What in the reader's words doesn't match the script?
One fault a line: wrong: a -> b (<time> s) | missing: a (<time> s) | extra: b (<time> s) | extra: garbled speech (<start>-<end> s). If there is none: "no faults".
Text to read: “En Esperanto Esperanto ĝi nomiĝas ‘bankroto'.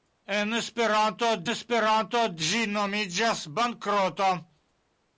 no faults